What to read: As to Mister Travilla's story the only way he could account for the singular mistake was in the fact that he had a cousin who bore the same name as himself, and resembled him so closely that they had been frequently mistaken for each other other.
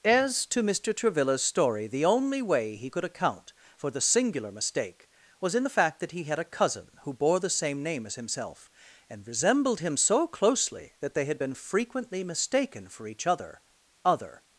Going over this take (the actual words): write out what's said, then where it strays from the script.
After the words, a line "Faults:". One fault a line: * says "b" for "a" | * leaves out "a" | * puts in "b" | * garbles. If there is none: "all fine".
As to Mister Travilla's story the only way he could account for the singular mistake was in the fact that he had a cousin who bore the same name as himself, and resembled him so closely that they had been frequently mistaken for each other other.
Faults:
all fine